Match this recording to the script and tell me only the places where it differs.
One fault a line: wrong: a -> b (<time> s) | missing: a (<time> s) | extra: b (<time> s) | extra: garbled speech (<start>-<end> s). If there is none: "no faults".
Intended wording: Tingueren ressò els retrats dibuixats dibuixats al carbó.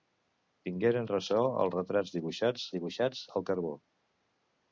no faults